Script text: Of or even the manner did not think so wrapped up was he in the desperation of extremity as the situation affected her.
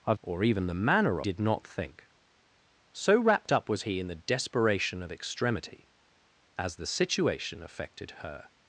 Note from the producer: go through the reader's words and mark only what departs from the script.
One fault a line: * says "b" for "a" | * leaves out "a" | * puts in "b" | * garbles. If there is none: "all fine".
all fine